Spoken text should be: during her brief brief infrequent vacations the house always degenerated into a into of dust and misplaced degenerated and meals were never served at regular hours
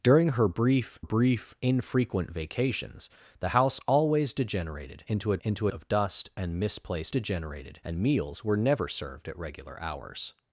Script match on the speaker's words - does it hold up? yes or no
yes